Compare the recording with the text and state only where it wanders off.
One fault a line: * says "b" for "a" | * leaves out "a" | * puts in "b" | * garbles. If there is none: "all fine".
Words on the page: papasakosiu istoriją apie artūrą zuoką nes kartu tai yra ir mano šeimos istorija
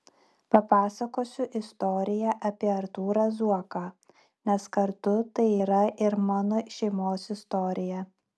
all fine